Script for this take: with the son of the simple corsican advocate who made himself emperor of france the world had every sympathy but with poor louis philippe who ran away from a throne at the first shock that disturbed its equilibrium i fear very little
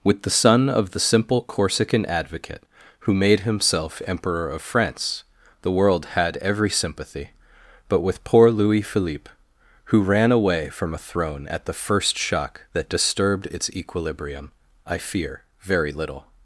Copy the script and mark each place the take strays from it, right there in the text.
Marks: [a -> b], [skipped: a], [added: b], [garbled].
with the son of the simple corsican advocate who made himself emperor of france the world had every sympathy but with poor louis philippe who ran away from a throne at the first shock that disturbed its equilibrium i fear very little